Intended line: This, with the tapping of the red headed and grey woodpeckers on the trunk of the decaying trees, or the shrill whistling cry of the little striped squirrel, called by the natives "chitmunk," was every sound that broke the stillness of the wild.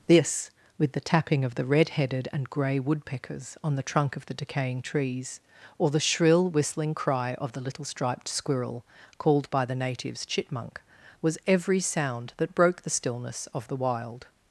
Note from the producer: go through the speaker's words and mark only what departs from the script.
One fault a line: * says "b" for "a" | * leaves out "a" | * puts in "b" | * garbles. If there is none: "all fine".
all fine